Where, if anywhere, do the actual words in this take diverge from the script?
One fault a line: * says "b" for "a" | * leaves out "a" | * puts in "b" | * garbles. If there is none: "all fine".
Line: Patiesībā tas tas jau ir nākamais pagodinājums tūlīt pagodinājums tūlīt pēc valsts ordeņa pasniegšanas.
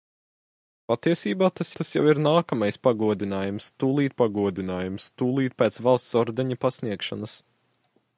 all fine